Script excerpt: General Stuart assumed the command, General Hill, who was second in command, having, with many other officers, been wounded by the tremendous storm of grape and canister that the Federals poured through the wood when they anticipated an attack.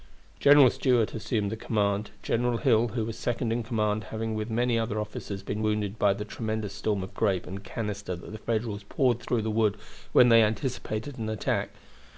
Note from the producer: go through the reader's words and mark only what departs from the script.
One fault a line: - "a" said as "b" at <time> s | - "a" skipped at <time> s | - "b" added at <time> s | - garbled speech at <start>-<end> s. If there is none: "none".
none